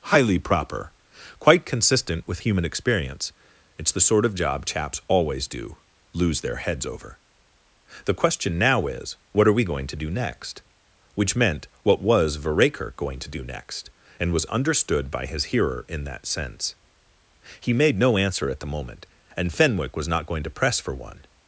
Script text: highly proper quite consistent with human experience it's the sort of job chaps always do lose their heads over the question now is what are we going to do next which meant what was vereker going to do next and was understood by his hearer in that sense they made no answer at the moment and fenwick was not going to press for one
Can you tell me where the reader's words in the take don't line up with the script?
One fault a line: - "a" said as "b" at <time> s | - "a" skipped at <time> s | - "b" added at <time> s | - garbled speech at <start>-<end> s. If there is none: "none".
- "they" said as "he" at 17.6 s